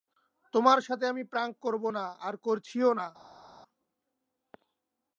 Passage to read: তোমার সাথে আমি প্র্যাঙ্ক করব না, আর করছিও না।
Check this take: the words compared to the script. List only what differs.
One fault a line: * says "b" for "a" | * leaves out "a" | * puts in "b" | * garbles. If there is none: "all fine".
all fine